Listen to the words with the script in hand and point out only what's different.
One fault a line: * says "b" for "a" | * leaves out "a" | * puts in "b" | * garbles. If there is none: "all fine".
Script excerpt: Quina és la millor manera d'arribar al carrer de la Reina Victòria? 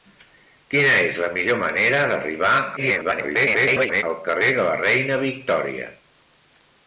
* garbles